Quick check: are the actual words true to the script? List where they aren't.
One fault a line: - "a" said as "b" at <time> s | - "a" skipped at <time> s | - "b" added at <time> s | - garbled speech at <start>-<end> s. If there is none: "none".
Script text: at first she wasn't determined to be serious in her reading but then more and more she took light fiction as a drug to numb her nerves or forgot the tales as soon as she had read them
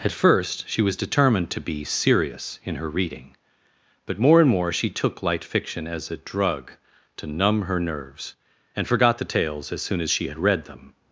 - "wasn't" said as "was" at 0.8 s
- "then" skipped at 4.2 s
- "or" said as "and" at 8.7 s